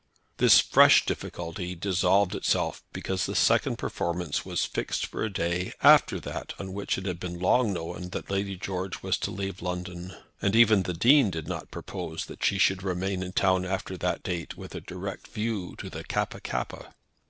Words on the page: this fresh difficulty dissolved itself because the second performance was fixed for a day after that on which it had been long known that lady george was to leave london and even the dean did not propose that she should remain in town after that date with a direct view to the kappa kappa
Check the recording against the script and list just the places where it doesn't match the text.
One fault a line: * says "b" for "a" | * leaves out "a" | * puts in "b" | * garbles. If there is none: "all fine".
all fine